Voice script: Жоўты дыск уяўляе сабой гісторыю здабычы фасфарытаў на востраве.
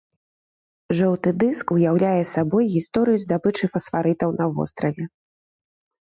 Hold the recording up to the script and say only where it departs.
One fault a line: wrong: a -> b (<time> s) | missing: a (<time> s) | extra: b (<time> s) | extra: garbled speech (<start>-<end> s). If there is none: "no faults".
no faults